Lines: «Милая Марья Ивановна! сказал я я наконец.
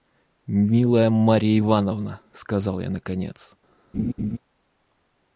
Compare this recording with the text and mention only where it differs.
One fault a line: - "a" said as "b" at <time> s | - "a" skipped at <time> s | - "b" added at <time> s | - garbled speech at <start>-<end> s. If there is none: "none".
- "я" skipped at 2.9 s